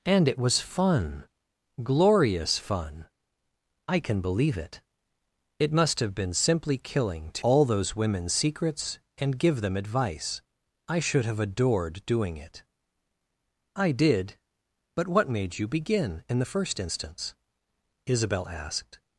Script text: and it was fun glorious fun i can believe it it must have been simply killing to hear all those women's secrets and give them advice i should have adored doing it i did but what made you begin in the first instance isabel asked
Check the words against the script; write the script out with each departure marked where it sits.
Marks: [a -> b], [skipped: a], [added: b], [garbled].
and it was fun glorious fun i can believe it it must have been simply killing to [skipped: hear] all those women's secrets and give them advice i should have adored doing it i did but what made you begin in the first instance isabel asked